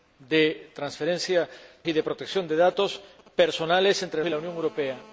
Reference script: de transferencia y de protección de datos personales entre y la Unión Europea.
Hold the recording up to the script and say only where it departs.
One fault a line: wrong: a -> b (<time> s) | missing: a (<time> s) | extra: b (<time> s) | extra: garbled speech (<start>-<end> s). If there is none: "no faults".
no faults